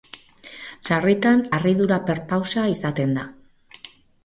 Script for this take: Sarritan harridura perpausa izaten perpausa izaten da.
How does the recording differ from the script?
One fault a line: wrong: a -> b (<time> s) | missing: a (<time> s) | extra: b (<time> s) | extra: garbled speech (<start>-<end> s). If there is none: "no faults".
missing: perpausa izaten (3.2 s)